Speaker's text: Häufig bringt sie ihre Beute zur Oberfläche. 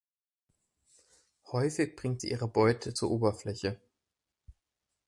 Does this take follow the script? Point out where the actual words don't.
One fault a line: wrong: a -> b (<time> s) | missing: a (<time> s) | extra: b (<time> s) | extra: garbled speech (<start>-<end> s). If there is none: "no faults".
no faults